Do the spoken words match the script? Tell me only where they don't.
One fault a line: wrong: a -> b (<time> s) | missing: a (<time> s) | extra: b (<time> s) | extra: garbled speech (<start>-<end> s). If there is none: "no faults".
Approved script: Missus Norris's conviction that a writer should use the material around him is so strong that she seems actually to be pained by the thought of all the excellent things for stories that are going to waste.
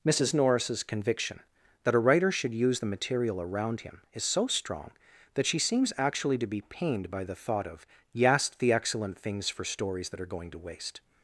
wrong: all -> yast (8.1 s)